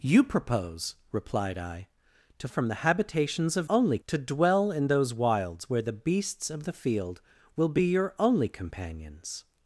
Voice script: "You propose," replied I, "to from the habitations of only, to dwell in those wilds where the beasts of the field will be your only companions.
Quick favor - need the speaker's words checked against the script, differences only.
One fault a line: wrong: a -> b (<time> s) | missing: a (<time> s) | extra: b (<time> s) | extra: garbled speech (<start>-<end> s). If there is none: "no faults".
no faults